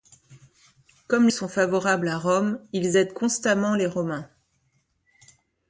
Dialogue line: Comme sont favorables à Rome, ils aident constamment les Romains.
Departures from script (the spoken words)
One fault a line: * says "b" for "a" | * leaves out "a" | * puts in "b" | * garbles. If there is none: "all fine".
all fine